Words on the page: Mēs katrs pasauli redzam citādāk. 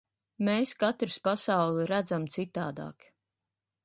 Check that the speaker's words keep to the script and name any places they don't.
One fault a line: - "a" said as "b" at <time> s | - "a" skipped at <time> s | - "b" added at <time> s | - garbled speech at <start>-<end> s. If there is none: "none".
none